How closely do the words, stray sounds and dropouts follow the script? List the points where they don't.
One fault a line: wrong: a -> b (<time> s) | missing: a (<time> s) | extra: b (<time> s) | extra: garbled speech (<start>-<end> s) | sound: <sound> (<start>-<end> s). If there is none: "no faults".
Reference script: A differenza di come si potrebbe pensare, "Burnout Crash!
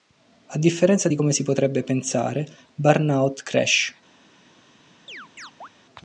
sound: chirp (5.1-5.7 s)